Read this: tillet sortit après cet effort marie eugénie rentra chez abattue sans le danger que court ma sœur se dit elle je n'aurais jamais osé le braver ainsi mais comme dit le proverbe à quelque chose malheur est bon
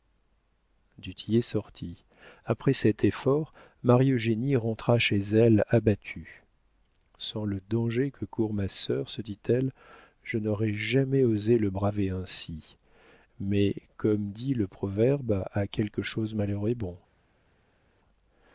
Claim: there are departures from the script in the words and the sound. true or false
true